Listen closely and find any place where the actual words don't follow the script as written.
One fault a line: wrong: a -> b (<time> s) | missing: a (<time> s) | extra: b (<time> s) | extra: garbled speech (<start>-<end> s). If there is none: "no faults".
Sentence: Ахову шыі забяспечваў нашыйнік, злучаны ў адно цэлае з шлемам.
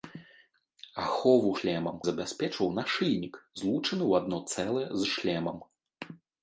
wrong: шыі -> шлемам (1.6 s)